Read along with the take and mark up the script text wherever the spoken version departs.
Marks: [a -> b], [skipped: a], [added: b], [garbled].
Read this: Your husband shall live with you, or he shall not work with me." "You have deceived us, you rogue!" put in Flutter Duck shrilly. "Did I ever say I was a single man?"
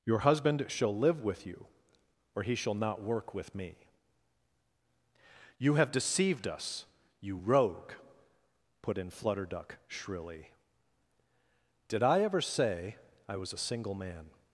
Your husband shall live with you, or he shall not work with me." "You have deceived us, you rogue!" put in Flutter Duck shrilly. "Did I ever say I was a single man?"